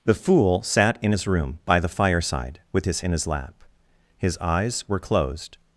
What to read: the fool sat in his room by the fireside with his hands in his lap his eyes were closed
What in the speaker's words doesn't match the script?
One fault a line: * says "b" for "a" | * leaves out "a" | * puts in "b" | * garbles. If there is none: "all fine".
* leaves out "hands"